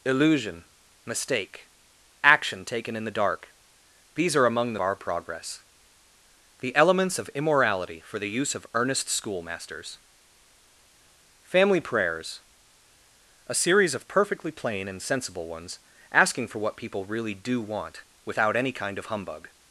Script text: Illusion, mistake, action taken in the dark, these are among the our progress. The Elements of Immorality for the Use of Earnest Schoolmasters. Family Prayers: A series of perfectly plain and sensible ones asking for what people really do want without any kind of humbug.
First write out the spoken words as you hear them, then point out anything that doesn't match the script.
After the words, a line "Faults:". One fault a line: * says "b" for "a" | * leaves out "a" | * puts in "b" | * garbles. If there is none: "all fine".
Illusion, mistake, action taken in the dark, these are among the our progress. The Elements of Immorality for the Use of Earnest Schoolmasters. Family Prayers: A series of perfectly plain and sensible ones asking for what people really do want without any kind of humbug.
Faults:
all fine